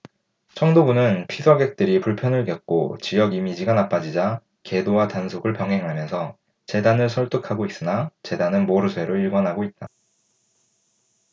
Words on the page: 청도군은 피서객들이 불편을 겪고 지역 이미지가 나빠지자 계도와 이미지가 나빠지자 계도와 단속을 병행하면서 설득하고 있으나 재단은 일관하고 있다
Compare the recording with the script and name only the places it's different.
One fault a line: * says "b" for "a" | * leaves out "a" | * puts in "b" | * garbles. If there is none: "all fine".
* leaves out "이미지가 나빠지자 계도와"
* puts in "재단을"
* puts in "모르쇠로"